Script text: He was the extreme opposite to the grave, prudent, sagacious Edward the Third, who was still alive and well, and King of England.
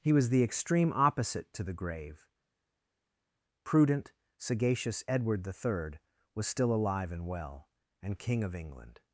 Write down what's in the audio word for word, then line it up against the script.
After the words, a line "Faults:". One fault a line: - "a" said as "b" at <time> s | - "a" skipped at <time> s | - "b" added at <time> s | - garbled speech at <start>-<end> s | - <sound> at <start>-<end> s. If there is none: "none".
He was the extreme opposite to the grave, prudent, sagacious Edward the Third, was still alive and well, and King of England.
Faults:
- "who" skipped at 6.0 s